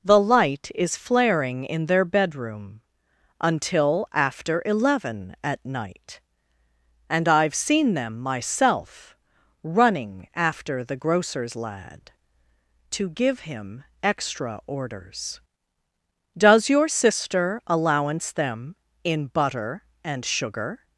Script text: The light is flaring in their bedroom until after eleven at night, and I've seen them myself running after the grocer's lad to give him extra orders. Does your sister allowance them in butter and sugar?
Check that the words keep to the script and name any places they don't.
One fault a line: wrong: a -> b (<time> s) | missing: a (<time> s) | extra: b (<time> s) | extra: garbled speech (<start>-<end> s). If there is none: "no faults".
no faults